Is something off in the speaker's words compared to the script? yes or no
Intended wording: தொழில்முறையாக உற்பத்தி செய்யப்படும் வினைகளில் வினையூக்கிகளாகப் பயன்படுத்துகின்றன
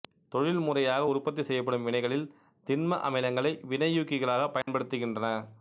yes